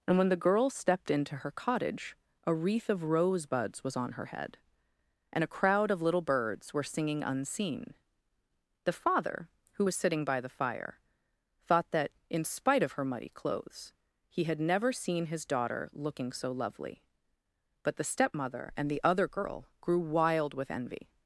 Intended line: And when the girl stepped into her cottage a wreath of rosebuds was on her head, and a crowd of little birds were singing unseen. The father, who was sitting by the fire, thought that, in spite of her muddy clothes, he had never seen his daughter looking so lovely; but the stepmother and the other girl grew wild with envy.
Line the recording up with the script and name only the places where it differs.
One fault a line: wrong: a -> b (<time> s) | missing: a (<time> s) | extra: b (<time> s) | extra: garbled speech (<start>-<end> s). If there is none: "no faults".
no faults